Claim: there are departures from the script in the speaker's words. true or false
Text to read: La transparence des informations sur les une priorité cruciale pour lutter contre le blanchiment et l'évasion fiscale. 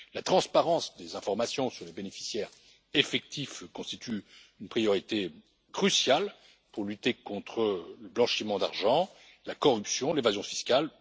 true